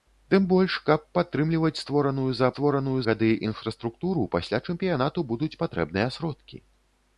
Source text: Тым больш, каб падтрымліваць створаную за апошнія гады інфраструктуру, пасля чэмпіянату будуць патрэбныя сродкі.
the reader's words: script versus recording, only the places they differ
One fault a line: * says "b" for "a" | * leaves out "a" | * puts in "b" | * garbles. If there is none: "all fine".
* says "створаную" for "апошнія"